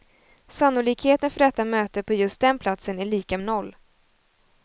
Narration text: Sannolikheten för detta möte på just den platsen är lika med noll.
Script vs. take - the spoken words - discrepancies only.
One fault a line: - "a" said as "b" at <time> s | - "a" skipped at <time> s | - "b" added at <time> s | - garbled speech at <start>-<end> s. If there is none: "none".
- "med" skipped at 3.4 s